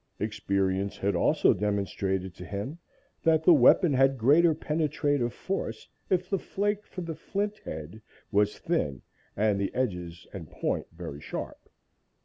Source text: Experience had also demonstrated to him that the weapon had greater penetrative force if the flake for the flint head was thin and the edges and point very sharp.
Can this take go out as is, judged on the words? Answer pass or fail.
pass